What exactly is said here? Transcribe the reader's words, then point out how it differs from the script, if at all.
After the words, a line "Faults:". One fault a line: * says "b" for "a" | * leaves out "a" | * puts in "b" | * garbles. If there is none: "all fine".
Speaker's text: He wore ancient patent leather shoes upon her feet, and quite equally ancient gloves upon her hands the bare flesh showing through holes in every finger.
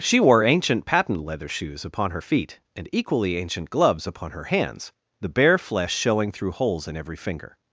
She wore ancient patent leather shoes upon her feet, and equally ancient gloves upon her hands the bare flesh showing through holes in every finger.
Faults:
* says "She" for "He"
* leaves out "quite"